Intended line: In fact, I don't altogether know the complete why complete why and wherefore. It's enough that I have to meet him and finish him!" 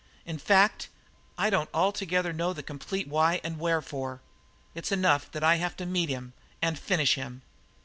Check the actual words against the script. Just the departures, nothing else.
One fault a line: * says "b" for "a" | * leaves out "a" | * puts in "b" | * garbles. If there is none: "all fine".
* leaves out "complete why"